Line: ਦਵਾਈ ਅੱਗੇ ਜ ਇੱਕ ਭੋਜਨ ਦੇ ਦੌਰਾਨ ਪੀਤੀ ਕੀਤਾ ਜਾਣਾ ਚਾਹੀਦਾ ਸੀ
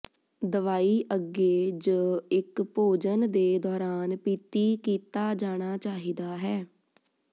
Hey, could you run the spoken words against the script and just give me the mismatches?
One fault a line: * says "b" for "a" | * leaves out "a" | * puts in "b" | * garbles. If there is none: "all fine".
* says "ਹੈ" for "ਸੀ"